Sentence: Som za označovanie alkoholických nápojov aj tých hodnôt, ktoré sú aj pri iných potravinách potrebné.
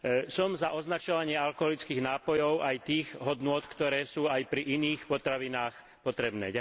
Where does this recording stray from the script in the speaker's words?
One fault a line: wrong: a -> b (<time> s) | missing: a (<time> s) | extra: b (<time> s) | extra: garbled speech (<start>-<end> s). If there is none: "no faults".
no faults